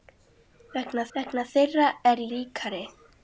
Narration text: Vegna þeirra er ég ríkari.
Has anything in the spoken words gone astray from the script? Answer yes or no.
yes